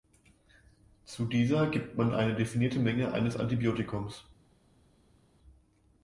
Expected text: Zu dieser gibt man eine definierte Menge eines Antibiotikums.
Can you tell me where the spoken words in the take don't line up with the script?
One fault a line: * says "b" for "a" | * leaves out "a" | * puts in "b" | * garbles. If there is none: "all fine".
all fine